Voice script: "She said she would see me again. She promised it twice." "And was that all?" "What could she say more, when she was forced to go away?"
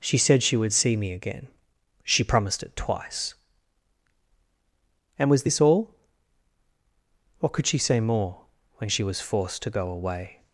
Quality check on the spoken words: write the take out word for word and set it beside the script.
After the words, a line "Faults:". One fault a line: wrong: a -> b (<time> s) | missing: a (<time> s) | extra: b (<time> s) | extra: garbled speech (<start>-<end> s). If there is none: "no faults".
"She said she would see me again. She promised it twice." "And was this all?" "What could she say more, when she was forced to go away?"
Faults:
wrong: that -> this (5.4 s)